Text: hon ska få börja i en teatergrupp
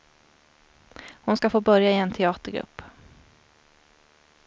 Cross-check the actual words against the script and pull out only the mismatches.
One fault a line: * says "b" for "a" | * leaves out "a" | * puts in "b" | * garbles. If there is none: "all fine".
all fine